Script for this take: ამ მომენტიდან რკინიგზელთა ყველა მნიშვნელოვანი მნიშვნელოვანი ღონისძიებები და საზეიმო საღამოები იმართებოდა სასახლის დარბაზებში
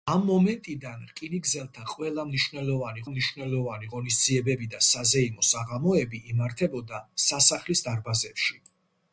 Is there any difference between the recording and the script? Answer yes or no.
no